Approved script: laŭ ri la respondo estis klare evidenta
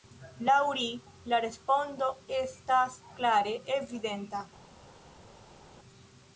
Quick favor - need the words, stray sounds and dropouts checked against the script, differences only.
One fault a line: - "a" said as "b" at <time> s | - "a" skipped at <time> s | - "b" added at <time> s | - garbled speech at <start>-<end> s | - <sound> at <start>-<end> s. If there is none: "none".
- "estis" said as "estas" at 2.4 s